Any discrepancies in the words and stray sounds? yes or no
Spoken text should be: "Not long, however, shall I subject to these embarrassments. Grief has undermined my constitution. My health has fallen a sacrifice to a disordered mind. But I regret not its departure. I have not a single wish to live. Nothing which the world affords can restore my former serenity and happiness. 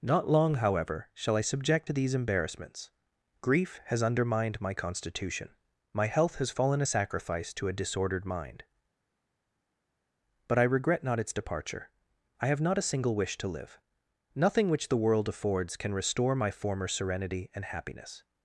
no